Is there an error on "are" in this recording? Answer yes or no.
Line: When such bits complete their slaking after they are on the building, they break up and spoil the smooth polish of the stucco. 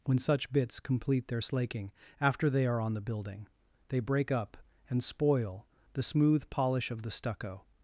no